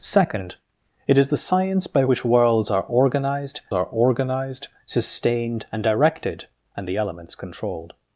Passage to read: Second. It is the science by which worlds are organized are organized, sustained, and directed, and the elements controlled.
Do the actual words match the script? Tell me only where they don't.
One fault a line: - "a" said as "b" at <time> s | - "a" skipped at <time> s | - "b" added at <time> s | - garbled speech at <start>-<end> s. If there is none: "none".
none